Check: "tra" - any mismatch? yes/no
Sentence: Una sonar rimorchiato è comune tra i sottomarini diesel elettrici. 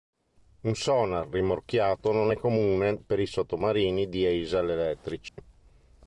yes